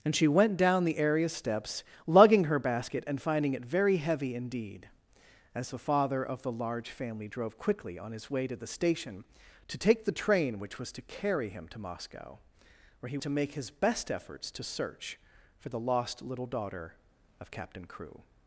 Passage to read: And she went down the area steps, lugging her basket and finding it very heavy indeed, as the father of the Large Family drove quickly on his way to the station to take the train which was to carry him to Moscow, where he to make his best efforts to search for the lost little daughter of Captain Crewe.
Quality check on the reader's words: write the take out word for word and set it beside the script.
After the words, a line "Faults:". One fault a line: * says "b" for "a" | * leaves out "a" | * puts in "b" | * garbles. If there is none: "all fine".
And she went down the area steps, lugging her basket and finding it very heavy indeed, as the father of the Large Family drove quickly on his way to the station to take the train which was to carry him to Moscow, where he to make his best efforts to search for the lost little daughter of Captain Crewe.
Faults:
all fine